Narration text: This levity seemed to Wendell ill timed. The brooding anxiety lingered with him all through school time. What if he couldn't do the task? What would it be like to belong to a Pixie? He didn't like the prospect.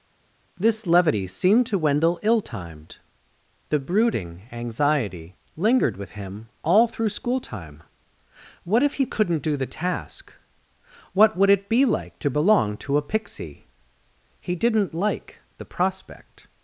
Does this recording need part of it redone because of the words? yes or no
no